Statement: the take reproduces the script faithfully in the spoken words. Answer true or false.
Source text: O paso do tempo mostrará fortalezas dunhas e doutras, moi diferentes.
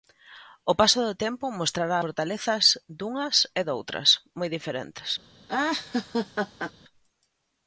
true